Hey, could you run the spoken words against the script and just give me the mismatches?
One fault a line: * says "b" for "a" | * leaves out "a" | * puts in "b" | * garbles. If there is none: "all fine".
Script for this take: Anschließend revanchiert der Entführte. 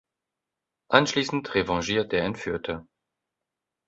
all fine